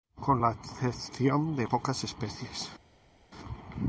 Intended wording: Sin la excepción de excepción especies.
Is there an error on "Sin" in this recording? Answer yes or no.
yes